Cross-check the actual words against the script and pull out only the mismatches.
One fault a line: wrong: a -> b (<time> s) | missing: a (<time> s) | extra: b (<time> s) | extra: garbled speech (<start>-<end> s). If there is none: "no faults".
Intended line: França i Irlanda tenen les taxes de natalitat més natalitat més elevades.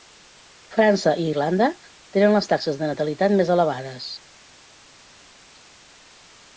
missing: natalitat més (3.5 s)